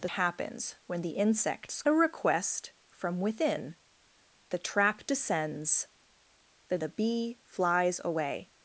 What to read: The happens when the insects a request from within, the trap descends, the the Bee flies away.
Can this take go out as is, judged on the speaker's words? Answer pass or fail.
pass